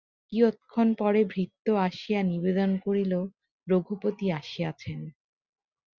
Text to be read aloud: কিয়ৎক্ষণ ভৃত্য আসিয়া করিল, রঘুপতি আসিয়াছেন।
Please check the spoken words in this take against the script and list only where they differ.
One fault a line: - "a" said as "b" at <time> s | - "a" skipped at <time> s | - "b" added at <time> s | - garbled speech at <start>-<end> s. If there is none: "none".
- "পরে" added at 1.0 s
- "নিবেদন" added at 2.2 s